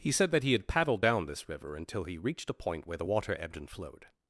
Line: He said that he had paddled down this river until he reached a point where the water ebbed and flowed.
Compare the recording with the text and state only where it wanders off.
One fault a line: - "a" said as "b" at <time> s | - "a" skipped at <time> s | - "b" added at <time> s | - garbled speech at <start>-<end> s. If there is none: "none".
none